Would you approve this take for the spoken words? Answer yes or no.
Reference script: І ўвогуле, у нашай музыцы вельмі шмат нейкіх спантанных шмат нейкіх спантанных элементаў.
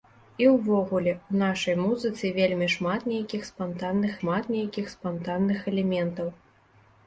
yes